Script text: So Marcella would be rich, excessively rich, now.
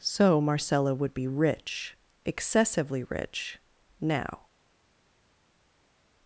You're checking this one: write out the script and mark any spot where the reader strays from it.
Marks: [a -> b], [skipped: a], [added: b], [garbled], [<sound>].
So Marcella would be rich, excessively rich, now.